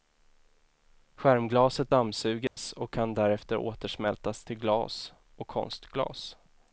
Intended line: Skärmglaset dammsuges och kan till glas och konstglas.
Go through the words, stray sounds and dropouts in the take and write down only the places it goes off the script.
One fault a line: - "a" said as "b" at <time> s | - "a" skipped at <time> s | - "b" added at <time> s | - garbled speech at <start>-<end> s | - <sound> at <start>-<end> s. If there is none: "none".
- dropout at 2.5-2.6 s
- "därefter återsmältas" added at 3.1 s